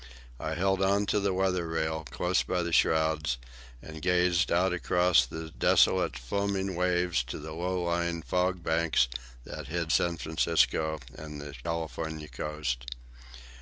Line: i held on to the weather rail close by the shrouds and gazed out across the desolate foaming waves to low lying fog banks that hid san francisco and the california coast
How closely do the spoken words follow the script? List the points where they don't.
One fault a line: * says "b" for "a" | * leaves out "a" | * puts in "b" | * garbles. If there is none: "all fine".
* puts in "the"